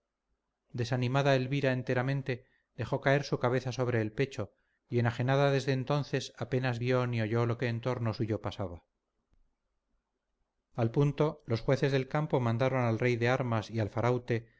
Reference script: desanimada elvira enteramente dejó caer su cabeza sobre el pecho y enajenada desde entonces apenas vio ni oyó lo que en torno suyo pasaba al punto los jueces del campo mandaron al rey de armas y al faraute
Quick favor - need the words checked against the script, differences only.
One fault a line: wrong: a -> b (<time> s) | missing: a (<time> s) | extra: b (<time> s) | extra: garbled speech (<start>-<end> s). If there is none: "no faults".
no faults